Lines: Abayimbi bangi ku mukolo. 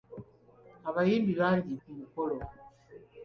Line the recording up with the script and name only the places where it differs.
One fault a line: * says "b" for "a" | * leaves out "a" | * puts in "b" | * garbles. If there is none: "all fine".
all fine